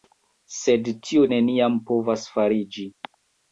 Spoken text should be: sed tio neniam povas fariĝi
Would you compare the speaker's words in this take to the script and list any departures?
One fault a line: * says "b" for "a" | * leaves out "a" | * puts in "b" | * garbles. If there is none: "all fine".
all fine